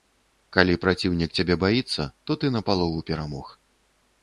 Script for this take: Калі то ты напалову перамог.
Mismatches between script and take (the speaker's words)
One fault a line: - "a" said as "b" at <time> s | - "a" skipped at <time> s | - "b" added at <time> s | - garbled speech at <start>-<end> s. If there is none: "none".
- "праціўнік цябе баіцца" added at 0.8 s